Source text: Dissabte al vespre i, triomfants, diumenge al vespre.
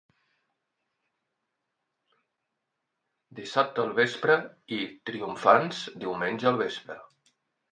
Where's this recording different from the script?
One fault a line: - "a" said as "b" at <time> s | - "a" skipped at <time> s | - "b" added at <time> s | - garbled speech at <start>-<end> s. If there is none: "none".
none